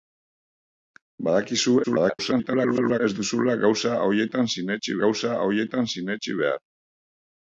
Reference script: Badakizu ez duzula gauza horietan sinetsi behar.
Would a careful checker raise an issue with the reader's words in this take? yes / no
yes